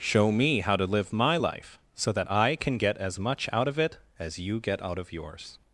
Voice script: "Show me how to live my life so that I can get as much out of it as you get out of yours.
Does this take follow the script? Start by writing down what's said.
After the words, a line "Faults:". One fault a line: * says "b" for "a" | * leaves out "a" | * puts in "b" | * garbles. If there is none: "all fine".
"Show me how to live my life so that I can get as much out of it as you get out of yours.
Faults:
all fine